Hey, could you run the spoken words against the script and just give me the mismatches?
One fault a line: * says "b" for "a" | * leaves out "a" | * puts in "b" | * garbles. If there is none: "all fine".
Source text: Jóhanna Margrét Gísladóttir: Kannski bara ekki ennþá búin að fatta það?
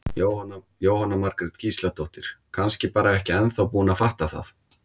all fine